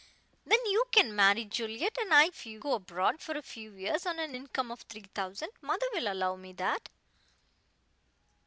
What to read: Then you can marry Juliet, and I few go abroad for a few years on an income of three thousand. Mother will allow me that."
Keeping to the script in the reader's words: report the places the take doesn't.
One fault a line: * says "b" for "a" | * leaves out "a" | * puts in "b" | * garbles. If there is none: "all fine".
all fine